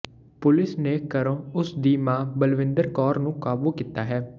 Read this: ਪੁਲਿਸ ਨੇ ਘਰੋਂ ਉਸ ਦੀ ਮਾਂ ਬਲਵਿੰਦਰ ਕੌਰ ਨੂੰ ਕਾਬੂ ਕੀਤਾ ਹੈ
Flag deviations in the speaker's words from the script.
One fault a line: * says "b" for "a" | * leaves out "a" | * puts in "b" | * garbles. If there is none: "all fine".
all fine